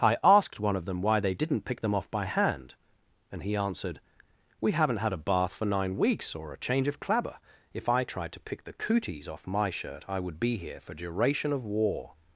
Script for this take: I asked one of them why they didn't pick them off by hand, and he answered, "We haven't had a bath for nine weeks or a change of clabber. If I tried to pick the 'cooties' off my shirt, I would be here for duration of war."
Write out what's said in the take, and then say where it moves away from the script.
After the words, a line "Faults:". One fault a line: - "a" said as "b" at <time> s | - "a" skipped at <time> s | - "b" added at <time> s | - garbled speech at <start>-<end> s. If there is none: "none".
I asked one of them why they didn't pick them off by hand, and he answered, "We haven't had a bath for nine weeks or a change of clabber. If I tried to pick the 'cooties' off my shirt, I would be here for duration of war."
Faults:
none